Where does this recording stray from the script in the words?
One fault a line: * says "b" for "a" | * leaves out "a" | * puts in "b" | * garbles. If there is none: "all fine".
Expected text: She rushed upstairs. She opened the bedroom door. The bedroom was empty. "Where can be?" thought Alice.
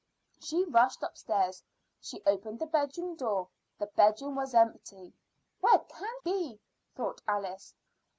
all fine